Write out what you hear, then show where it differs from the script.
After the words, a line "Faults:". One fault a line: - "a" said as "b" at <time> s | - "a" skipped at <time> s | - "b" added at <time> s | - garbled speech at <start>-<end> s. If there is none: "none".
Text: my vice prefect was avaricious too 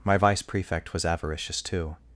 my vice prefect was avaricious too
Faults:
none